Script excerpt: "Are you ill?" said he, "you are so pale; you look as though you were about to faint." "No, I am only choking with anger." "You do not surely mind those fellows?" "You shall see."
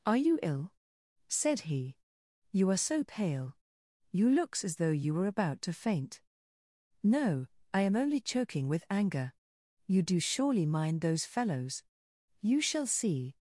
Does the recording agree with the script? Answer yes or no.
no